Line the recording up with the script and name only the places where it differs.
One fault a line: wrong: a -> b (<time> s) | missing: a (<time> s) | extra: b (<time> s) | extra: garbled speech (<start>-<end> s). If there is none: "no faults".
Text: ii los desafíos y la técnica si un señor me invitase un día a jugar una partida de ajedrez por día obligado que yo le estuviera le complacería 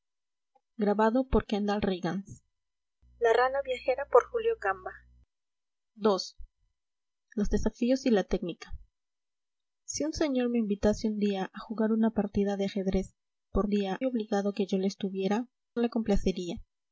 no faults